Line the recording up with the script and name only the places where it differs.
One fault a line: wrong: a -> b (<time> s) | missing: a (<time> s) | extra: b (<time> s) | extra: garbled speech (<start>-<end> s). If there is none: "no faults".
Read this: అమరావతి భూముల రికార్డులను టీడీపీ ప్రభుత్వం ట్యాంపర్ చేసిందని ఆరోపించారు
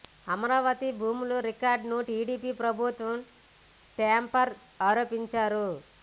missing: చేసిందని (4.5 s)